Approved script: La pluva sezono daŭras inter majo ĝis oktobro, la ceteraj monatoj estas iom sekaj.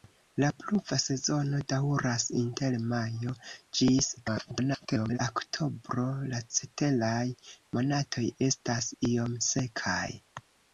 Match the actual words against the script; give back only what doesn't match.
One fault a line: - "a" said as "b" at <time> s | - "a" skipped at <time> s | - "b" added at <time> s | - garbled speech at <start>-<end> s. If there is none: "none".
- garbled speech at 4.2-5.2 s